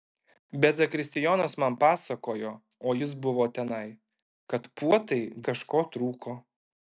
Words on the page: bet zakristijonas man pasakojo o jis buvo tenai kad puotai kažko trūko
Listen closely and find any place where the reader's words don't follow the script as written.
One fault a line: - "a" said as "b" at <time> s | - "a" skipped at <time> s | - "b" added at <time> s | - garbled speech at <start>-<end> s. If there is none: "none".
none